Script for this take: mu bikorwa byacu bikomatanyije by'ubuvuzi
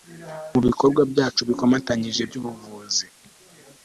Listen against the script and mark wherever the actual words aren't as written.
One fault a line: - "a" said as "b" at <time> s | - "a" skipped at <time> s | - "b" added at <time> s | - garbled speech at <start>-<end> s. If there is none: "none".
none